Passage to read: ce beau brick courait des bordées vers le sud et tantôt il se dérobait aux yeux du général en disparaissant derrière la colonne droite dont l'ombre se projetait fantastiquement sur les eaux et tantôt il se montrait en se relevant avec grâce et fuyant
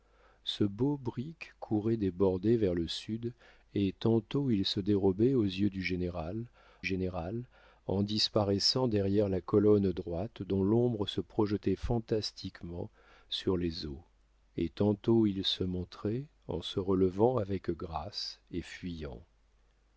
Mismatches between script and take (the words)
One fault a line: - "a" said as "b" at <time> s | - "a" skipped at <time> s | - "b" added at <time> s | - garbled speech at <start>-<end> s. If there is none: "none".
- "général" added at 6.8 s